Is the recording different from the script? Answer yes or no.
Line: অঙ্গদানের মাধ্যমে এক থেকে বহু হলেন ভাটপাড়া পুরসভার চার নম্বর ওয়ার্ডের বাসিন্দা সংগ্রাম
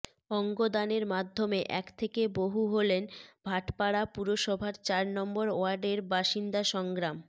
no